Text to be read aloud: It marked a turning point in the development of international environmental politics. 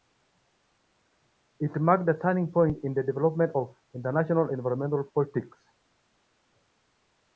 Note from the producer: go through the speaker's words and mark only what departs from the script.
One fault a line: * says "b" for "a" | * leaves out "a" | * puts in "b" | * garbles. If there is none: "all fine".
all fine